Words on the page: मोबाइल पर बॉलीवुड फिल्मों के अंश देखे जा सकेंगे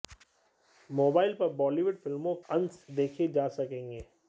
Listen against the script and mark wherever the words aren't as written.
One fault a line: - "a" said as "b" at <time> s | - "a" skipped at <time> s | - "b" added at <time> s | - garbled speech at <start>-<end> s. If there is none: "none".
- "के" skipped at 2.4 s